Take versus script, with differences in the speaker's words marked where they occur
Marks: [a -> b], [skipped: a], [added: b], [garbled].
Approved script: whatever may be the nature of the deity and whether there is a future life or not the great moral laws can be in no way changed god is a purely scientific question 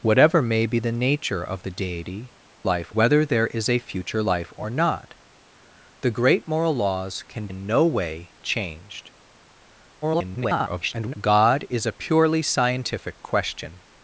whatever may be the nature of the deity [and -> life] whether there is a future life or not the great moral laws can [skipped: be] in no way changed [garbled] god is a purely scientific question